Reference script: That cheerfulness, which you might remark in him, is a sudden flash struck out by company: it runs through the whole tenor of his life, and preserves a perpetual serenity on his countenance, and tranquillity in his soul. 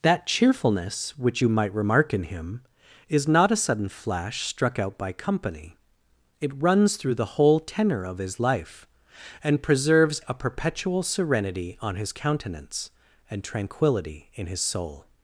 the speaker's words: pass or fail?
fail